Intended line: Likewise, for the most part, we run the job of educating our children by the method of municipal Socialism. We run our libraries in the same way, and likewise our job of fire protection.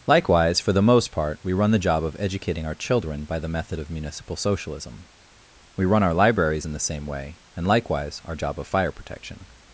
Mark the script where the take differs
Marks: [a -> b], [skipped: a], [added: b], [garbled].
Likewise, for the most part, we run the job of educating our children by the method of municipal Socialism. We run our libraries in the same way, and likewise our job of fire protection.